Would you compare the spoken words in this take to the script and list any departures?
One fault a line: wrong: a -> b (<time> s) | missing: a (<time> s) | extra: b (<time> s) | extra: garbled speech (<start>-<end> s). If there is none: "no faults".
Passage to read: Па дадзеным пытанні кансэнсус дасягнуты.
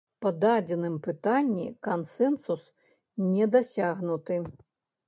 extra: не (3.3 s)